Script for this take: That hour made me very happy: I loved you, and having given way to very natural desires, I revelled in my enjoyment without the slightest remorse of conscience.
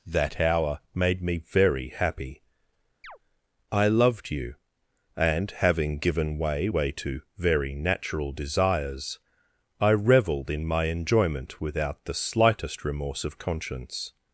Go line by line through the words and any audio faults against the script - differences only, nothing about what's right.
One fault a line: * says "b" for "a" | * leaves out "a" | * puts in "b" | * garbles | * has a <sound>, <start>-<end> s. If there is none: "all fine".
* has a chirp, 3.0-3.2 s
* puts in "way"